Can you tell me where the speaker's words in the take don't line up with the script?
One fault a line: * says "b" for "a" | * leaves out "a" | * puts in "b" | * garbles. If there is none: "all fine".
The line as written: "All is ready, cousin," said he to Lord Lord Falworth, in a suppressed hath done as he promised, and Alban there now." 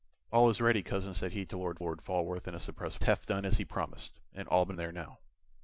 all fine